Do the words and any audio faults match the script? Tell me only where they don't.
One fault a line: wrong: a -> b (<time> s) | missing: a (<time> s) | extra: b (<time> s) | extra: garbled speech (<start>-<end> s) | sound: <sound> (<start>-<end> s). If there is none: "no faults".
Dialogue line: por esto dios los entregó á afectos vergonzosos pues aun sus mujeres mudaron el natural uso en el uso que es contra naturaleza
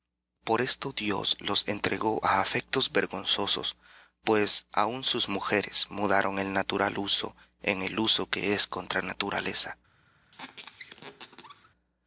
sound: squeak (10.3-11.7 s)